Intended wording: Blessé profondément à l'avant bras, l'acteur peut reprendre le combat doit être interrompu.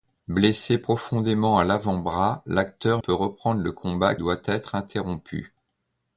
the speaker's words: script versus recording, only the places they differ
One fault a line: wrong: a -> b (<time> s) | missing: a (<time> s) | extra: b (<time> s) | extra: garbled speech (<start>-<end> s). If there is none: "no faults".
no faults